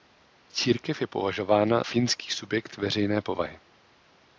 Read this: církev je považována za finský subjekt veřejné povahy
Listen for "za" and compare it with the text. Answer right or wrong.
wrong